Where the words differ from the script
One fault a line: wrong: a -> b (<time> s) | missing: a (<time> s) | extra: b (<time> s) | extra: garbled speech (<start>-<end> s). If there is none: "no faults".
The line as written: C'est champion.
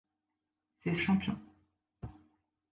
no faults